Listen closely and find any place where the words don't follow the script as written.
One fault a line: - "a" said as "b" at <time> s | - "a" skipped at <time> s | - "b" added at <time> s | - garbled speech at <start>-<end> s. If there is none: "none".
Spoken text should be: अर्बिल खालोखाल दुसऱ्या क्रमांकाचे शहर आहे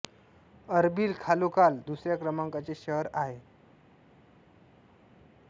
none